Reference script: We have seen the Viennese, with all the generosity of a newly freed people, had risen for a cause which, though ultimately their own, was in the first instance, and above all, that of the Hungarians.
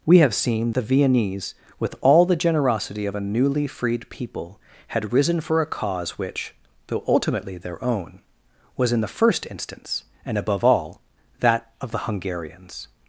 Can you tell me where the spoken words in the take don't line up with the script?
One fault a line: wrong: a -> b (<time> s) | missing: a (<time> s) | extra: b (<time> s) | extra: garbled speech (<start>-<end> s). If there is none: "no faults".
no faults